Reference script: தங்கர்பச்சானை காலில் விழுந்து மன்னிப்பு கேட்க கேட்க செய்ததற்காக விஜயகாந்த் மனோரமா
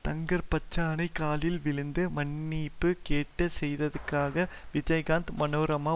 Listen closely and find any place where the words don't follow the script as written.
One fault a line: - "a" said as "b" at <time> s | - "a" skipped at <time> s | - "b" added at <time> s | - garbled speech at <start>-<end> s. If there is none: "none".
- "கேட்க" skipped at 3.5 s